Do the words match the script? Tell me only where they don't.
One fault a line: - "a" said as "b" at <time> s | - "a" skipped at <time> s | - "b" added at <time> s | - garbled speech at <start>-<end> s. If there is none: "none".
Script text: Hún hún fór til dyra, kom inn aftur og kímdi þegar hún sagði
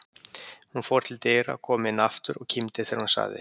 - "hún" skipped at 0.8 s